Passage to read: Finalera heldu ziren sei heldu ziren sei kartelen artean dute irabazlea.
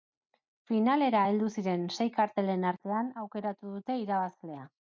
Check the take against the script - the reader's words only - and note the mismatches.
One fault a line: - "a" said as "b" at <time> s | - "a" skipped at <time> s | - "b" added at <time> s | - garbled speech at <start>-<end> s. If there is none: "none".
- "heldu ziren sei" skipped at 2.1 s
- "aukeratu" added at 3.2 s